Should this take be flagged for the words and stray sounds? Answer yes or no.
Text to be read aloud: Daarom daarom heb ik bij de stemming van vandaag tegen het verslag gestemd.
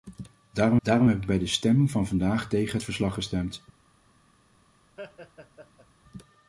yes